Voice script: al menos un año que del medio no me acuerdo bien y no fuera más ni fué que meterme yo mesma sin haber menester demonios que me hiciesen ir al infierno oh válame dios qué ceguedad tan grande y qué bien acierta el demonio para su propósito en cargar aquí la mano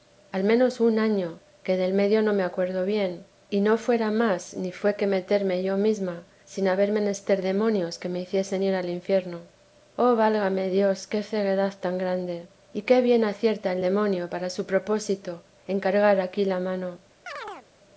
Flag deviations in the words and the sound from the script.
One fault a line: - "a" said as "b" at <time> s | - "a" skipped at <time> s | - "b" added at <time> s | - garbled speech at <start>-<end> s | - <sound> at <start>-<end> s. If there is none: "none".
- chirp at 17.3-17.7 s